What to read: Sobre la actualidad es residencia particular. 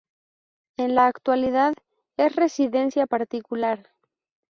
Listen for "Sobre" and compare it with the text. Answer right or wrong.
wrong